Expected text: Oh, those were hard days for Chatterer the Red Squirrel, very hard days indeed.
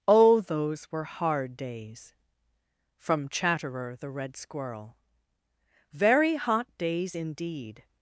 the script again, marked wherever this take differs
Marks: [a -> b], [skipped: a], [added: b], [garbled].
Oh, those were hard days [for -> from] Chatterer the Red Squirrel, very [hard -> hot] days indeed.